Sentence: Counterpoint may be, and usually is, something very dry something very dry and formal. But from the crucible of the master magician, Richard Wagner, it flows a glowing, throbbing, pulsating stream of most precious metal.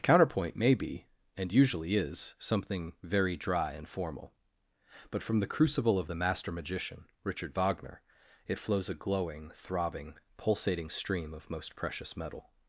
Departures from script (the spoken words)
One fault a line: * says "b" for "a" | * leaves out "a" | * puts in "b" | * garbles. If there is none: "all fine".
* leaves out "something very dry"